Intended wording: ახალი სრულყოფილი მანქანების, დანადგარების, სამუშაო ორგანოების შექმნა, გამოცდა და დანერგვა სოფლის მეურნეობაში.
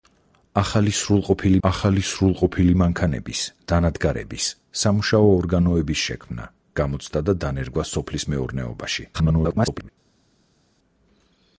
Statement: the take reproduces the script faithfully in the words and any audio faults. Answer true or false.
false